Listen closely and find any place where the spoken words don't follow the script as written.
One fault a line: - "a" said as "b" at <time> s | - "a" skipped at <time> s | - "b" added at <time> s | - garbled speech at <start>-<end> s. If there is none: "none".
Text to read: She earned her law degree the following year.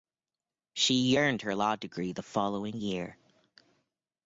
none